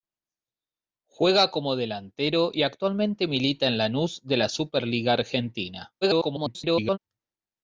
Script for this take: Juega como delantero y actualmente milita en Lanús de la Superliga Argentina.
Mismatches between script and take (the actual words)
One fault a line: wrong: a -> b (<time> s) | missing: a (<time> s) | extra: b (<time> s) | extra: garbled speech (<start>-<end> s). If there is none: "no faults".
extra: garbled speech (6.0-7.0 s)